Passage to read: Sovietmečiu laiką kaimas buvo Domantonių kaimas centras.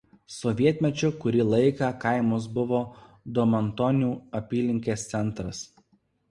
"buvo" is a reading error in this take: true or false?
false